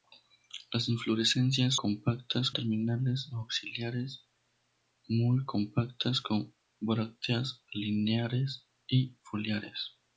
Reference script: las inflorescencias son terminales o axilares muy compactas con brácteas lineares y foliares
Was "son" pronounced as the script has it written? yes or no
no